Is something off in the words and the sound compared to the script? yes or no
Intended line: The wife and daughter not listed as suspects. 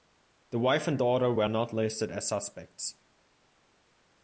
yes